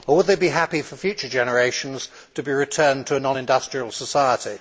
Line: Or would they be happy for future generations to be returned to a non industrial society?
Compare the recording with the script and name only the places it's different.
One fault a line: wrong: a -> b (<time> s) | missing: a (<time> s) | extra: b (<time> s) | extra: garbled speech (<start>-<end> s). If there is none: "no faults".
no faults